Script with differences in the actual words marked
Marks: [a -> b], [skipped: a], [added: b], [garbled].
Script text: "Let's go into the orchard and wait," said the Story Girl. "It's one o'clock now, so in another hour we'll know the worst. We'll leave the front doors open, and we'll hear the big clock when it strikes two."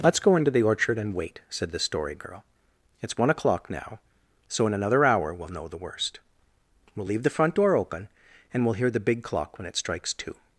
"Let's go into the orchard and wait," said the Story Girl. "It's one o'clock now, so in another hour we'll know the worst. We'll leave the front [doors -> door] open, and we'll hear the big clock when it strikes two."